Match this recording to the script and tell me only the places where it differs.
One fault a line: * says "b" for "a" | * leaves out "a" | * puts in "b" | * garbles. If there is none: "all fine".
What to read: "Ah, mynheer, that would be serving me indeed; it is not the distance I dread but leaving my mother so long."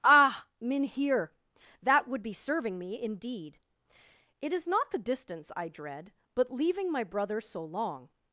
* says "brother" for "mother"